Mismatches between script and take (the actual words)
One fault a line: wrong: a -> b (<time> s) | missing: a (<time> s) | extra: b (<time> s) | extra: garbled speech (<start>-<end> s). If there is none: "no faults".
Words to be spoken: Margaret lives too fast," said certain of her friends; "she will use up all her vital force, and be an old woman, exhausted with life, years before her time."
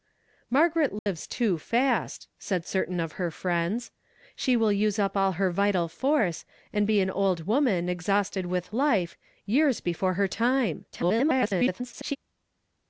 extra: garbled speech (10.9-12.2 s)